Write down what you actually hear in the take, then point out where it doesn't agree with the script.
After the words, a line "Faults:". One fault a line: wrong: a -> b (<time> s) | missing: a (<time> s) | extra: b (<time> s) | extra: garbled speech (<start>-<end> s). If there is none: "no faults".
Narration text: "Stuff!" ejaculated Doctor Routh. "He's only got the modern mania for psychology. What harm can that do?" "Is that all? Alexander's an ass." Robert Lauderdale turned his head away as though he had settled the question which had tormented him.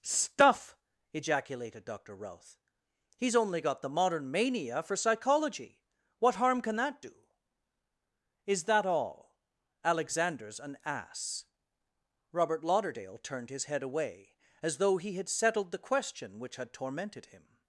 "Stuff!" ejaculated Doctor Routh. "He's only got the modern mania for psychology. What harm can that do?" "Is that all? Alexander's an ass." Robert Lauderdale turned his head away as though he had settled the question which had tormented him.
Faults:
no faults